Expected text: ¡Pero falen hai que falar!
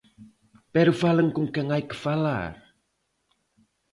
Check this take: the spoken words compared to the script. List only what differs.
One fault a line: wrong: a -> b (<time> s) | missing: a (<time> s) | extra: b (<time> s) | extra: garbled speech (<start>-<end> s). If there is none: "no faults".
extra: con quen (1.3 s)